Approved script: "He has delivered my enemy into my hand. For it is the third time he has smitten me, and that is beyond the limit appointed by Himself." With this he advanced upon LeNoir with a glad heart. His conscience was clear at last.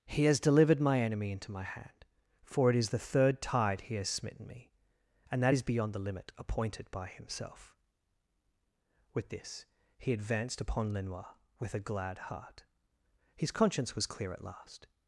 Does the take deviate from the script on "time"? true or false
true